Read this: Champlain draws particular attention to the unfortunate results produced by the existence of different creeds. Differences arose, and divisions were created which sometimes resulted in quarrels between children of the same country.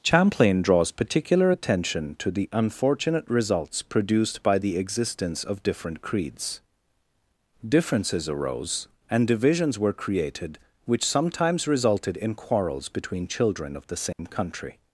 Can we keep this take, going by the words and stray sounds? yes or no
no